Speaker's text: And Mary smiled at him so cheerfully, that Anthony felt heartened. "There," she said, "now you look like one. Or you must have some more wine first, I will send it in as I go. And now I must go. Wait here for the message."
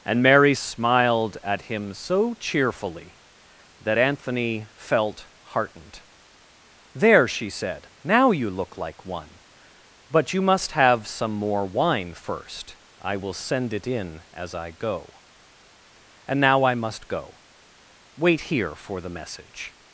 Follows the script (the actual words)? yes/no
no